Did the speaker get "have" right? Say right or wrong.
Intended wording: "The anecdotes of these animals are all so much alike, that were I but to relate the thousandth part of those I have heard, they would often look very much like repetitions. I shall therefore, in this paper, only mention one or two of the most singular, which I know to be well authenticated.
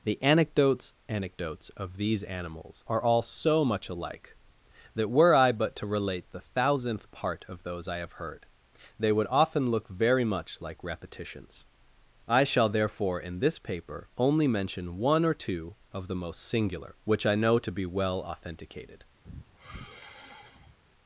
right